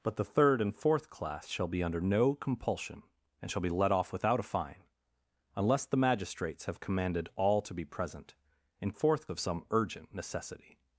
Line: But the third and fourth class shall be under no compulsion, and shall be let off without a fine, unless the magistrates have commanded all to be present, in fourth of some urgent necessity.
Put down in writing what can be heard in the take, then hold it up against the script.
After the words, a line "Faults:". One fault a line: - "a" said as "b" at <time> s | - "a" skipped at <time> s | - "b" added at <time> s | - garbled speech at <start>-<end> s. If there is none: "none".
But the third and fourth class shall be under no compulsion, and shall be let off without a fine, unless the magistrates have commanded all to be present, in fourth of some urgent necessity.
Faults:
none